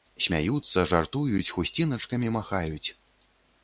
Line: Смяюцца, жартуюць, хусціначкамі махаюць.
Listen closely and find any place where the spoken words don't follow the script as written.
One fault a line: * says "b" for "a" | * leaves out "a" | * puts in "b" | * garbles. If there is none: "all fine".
all fine